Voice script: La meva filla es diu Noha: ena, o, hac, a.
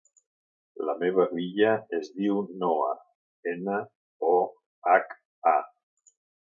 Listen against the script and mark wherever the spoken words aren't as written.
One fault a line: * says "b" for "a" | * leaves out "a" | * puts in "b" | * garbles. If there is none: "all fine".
all fine